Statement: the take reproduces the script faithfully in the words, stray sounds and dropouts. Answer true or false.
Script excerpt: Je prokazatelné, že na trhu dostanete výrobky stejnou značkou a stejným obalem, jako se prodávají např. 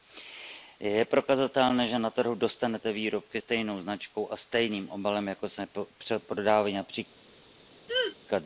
false